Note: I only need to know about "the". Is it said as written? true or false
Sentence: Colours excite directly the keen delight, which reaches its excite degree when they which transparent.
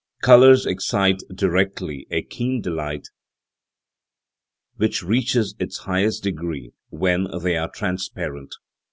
false